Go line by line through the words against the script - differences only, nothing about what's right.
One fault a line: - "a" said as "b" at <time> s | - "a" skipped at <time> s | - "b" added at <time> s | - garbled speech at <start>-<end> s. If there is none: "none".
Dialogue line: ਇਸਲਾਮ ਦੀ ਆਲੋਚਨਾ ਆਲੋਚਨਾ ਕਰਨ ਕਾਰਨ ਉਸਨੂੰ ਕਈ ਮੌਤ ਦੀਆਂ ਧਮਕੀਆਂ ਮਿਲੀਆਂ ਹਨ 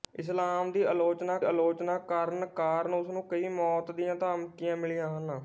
none